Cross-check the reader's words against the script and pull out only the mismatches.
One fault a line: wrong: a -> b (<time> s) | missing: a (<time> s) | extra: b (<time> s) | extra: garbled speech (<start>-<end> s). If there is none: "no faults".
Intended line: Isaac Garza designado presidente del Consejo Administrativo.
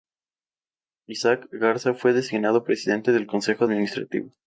extra: fue (1.9 s)